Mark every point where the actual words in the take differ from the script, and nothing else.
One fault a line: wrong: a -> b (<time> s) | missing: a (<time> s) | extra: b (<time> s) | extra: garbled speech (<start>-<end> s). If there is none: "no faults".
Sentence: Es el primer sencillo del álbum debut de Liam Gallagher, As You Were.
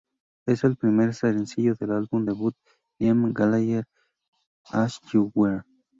no faults